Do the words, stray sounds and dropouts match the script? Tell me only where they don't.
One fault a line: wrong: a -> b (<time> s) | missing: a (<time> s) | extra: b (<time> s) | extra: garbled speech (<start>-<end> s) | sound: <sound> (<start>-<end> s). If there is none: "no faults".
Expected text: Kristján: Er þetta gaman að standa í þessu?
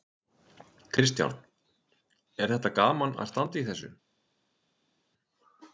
no faults